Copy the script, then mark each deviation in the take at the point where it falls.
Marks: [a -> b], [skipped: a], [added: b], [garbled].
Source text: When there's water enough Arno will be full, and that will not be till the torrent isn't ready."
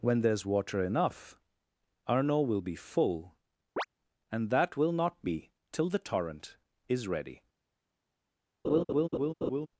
When there's water enough Arno will be full, and that will not be till the torrent [isn't -> is] ready."